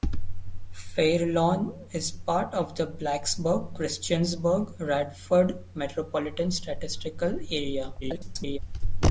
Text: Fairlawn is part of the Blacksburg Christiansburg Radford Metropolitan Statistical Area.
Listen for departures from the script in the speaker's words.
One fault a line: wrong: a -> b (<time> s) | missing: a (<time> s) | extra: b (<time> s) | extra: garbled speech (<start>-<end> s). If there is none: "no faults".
extra: garbled speech (8.0-8.6 s)